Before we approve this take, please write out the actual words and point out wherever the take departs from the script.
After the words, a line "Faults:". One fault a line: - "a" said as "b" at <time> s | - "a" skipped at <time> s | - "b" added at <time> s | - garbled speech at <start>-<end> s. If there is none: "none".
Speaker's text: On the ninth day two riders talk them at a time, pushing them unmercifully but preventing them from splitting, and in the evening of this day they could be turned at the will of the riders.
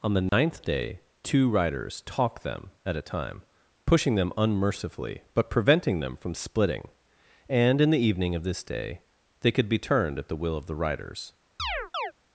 On the ninth day two riders talk them at a time, pushing them unmercifully but preventing them from splitting, and in the evening of this day they could be turned at the will of the riders.
Faults:
none